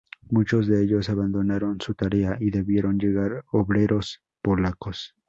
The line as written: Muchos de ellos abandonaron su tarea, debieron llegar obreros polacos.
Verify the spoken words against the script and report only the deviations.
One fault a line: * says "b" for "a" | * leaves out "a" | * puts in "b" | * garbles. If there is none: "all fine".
* puts in "y"